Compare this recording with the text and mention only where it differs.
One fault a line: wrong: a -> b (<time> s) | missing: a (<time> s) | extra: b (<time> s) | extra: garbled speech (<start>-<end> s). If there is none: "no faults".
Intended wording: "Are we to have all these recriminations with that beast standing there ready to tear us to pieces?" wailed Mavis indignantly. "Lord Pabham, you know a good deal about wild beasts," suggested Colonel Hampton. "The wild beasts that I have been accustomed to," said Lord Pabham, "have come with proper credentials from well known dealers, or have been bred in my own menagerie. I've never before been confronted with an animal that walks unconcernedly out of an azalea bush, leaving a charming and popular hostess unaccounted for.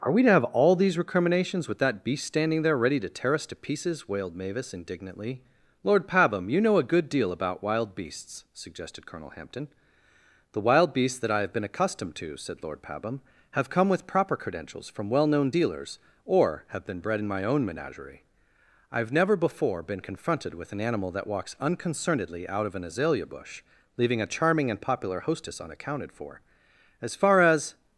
extra: As far as (27.0 s)